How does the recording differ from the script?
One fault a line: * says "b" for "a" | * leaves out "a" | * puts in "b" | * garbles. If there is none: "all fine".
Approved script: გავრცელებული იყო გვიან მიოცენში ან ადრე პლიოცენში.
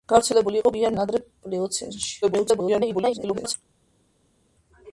* leaves out "მიოცენში"
* garbles